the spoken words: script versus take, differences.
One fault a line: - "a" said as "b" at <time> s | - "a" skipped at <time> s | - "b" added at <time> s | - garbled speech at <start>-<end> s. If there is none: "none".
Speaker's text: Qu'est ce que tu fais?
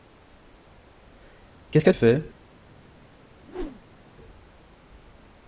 - "tu" skipped at 1.9 s